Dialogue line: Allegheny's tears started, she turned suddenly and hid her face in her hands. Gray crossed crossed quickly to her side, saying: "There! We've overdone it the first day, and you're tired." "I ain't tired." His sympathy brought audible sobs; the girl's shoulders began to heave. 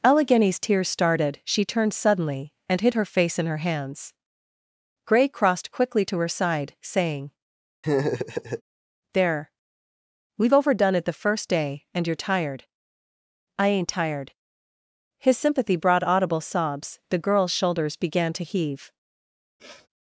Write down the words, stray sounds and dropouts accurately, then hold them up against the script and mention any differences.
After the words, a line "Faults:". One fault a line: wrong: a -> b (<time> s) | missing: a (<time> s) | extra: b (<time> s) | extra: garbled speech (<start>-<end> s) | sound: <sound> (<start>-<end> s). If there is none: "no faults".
Allegheny's tears started, she turned suddenly and hid her face in her hands. Gray crossed quickly to her side, saying: "There! We've overdone it the first day, and you're tired." "I ain't tired." His sympathy brought audible sobs; the girl's shoulders began to heave.
Faults:
missing: crossed (5.7 s)
sound: laugh (7.8-8.6 s)
sound: sniff (19.6-19.9 s)